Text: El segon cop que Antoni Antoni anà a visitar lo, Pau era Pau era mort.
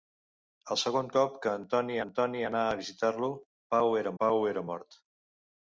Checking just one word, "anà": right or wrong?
right